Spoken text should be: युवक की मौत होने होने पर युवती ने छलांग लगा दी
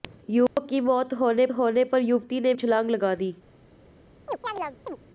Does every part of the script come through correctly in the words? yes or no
yes